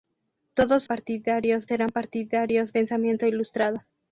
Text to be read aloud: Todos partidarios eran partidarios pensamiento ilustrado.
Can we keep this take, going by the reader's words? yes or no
yes